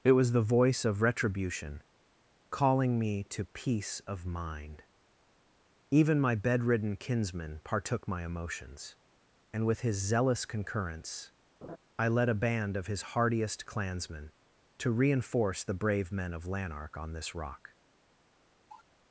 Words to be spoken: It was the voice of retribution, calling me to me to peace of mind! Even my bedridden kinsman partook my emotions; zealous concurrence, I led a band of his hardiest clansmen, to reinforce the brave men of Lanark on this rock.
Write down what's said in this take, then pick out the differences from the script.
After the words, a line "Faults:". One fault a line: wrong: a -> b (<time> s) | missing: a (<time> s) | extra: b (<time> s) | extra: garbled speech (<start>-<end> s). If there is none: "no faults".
It was the voice of retribution, calling me to peace of mind! Even my bedridden kinsman partook my emotions; and with his zealous concurrence, I led a band of his hardiest clansmen, to reinforce the brave men of Lanark on this rock.
Faults:
missing: me to (3.5 s)
extra: and with his (9.5 s)